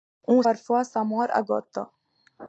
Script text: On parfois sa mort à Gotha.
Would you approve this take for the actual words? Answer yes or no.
yes